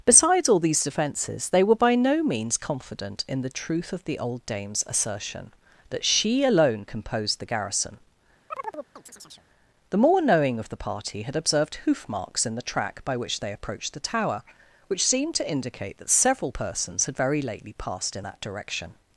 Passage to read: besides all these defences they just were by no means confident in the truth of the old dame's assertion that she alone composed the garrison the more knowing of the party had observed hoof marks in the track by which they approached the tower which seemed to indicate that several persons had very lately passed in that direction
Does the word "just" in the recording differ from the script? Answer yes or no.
yes